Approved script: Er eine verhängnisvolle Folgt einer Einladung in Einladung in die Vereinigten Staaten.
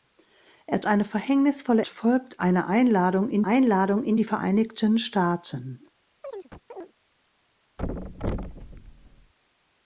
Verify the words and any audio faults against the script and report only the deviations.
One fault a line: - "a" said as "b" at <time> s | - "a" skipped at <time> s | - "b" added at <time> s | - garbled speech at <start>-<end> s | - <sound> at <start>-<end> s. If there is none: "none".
- chirp at 6.2-6.9 s
- thud at 7.8-9.3 s